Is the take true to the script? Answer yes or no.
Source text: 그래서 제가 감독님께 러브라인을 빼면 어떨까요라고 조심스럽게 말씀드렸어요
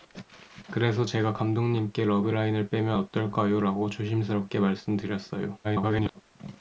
no